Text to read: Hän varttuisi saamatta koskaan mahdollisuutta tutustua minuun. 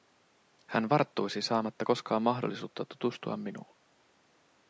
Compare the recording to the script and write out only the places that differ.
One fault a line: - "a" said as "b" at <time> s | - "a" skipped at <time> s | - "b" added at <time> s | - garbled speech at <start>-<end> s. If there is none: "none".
none